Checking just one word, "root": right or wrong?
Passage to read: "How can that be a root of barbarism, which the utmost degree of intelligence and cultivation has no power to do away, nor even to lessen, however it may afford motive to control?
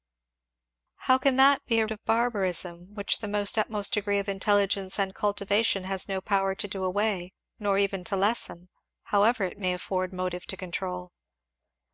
wrong